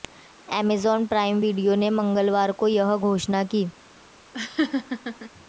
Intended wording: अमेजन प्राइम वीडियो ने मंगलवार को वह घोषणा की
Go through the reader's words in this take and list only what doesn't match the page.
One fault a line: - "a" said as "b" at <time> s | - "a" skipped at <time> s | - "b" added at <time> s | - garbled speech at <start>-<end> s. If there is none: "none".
- "वह" said as "यह" at 2.7 s